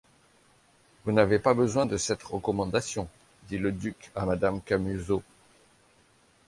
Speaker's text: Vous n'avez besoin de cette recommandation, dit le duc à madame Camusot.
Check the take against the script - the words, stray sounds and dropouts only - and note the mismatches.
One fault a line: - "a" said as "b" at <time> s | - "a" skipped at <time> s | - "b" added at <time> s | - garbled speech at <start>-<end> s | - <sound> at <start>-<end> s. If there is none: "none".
- "pas" added at 1.4 s